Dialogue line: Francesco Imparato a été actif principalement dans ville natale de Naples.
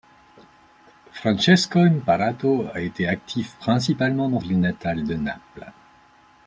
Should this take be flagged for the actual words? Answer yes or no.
no